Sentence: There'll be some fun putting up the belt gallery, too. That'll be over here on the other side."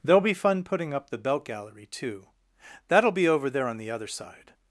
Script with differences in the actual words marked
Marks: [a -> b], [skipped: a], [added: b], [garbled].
There'll be [skipped: some] fun putting up the belt gallery, too. That'll be over [here -> there] on the other side."